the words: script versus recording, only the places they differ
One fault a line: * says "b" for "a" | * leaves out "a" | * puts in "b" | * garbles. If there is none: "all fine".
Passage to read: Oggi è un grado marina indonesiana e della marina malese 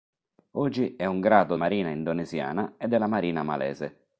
all fine